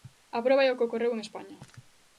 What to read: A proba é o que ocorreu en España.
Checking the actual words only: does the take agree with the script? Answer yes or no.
yes